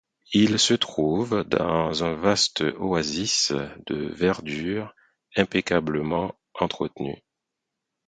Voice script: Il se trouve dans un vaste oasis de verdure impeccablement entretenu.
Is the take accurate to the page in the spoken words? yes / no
yes